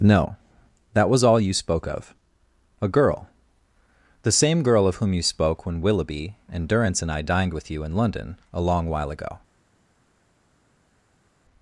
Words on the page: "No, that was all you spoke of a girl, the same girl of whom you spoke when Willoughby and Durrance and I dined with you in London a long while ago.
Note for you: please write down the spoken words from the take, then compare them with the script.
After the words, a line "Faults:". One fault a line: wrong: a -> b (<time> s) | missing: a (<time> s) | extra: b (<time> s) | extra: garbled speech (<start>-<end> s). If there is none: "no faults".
"No, that was all you spoke of a girl, the same girl of whom you spoke when Willoughby and Durrance and I dined with you in London a long while ago.
Faults:
no faults